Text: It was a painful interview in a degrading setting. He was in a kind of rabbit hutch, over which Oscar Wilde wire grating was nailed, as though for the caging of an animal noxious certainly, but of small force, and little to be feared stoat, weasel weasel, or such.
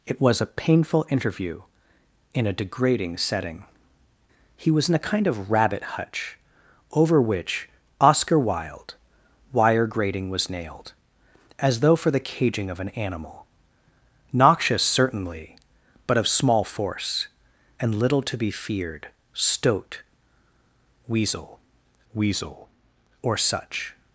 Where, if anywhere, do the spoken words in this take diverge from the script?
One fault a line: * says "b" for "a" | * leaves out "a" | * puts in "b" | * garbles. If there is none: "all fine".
all fine